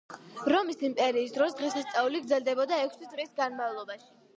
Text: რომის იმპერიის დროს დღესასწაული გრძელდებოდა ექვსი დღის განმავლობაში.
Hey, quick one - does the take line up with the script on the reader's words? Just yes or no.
yes